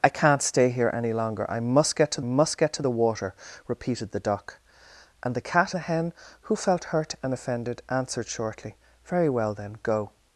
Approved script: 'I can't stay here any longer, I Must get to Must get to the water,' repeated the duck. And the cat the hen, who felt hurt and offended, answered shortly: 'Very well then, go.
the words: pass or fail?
pass